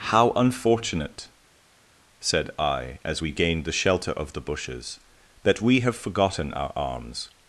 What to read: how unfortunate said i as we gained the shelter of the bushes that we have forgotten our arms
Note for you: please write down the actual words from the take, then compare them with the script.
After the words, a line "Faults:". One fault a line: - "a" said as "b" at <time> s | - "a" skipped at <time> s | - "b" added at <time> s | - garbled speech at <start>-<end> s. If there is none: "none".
how unfortunate said i as we gained the shelter of the bushes that we have forgotten our arms
Faults:
none